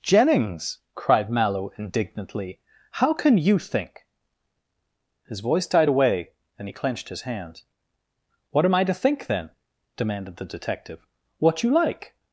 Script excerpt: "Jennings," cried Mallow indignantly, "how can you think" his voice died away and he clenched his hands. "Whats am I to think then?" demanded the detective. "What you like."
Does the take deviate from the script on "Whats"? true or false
true